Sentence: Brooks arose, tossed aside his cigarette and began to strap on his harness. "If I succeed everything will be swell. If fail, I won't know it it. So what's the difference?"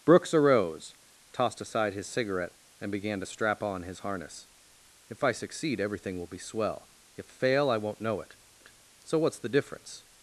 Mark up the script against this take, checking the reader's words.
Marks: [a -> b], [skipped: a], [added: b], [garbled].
Brooks arose, tossed aside his cigarette and began to strap on his harness. "If I succeed everything will be swell. If fail, I won't know it it. So what's the difference?"